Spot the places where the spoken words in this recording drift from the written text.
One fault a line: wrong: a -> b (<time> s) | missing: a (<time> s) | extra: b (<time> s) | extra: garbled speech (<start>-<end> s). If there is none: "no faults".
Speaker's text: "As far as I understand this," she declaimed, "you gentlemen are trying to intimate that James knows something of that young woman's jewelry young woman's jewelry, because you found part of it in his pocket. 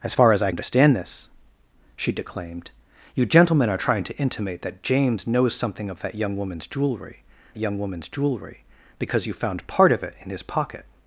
no faults